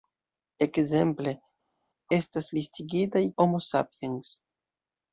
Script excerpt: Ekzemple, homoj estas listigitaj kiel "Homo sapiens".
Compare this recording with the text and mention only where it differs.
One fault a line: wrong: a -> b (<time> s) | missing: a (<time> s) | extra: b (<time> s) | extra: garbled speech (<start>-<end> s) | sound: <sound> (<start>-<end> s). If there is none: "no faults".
missing: homoj (1.3 s)
missing: kiel (3.2 s)